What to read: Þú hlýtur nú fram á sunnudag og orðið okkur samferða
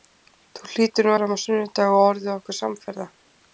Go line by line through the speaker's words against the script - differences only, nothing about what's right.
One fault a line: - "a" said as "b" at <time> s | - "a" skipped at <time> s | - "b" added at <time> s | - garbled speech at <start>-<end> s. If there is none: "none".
none